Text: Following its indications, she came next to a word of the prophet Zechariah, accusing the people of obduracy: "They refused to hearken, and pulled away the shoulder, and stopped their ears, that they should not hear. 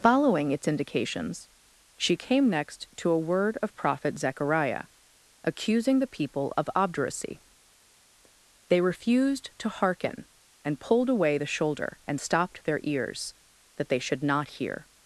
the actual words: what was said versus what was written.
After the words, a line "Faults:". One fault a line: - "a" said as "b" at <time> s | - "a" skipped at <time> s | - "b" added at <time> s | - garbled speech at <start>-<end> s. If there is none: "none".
Following its indications, she came next to a word of prophet Zechariah, accusing the people of obduracy: "They refused to hearken, and pulled away the shoulder, and stopped their ears, that they should not hear.
Faults:
- "the" skipped at 3.8 s